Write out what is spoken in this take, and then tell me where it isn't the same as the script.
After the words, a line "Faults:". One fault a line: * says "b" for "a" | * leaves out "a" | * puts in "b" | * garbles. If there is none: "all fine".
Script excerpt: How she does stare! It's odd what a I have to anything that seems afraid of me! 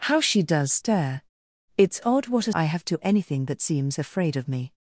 How she does stare! It's odd what a I have to anything that seems afraid of me!
Faults:
all fine